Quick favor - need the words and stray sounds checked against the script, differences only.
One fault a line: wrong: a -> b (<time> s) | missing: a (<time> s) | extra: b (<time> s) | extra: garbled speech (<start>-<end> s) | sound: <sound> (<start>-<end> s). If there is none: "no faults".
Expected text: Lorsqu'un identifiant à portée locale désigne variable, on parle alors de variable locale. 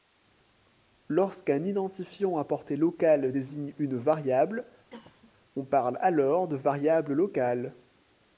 extra: une (3.8 s)
sound: cough (4.9-5.3 s)